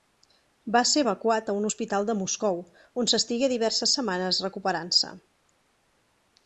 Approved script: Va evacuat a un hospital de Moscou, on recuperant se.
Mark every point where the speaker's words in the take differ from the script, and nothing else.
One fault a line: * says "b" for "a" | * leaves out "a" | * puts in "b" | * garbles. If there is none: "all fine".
* puts in "ser"
* puts in "s'estigué diverses setmanes"